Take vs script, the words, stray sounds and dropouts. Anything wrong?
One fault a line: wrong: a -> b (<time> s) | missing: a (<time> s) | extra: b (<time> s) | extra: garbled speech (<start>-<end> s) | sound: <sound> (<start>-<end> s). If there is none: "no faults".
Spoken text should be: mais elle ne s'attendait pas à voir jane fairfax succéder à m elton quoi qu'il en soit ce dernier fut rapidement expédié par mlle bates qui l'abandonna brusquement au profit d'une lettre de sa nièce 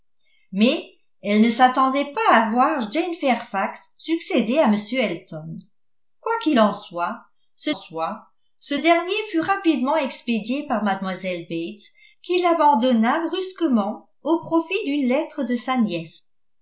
extra: soit ce (7.7 s)